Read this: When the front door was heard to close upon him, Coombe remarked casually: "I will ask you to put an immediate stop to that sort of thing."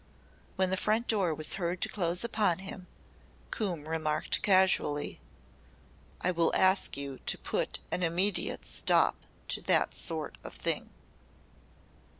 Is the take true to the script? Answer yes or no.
yes